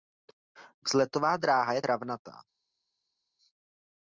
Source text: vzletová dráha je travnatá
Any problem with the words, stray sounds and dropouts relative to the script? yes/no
no